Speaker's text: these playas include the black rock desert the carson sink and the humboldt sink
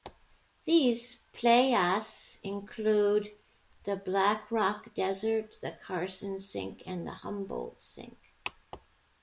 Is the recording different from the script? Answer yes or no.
no